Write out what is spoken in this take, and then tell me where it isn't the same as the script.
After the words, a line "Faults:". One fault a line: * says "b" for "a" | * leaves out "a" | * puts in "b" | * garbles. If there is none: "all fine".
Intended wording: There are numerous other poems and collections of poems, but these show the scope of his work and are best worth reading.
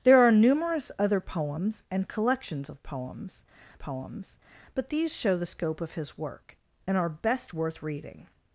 There are numerous other poems and collections of poems poems, but these show the scope of his work and are best worth reading.
Faults:
* puts in "poems"